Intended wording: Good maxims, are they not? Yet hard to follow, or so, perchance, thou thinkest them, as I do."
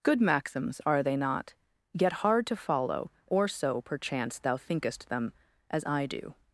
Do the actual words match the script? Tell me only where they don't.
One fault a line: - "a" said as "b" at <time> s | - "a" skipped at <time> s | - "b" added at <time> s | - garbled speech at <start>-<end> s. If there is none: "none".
none